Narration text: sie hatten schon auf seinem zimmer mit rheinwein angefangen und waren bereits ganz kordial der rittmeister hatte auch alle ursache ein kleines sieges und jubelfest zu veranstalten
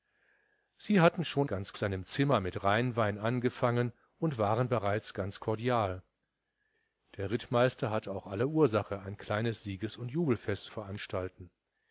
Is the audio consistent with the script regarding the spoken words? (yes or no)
no